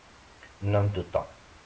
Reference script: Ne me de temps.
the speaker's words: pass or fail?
pass